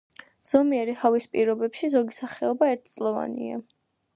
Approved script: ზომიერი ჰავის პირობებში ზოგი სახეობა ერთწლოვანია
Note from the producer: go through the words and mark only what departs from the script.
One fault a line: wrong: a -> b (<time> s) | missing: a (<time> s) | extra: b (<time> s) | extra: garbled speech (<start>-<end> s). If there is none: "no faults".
no faults